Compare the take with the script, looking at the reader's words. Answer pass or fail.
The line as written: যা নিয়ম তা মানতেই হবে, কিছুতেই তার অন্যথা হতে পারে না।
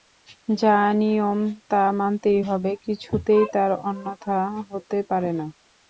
pass